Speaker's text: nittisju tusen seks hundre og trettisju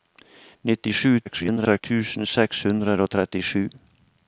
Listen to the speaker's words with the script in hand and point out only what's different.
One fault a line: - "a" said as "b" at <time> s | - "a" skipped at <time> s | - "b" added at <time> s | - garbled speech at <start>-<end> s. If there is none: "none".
- garbled speech at 1.2-1.8 s